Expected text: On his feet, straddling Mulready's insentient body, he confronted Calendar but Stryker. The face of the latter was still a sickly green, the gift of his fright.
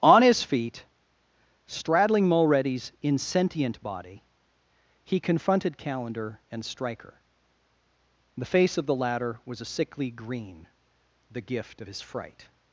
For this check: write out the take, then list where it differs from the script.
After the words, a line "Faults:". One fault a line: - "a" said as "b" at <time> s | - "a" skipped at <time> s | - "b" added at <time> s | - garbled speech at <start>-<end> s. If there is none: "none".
On his feet, straddling Mulready's insentient body, he confronted Calendar and Stryker. The face of the latter was a sickly green, the gift of his fright.
Faults:
- "but" said as "and" at 6.5 s
- "still" skipped at 9.6 s